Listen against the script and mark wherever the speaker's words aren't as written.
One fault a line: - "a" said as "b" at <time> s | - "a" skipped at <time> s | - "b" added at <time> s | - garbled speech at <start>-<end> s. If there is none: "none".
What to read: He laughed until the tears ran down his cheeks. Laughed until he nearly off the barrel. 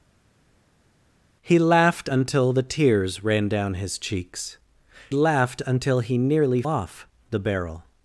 none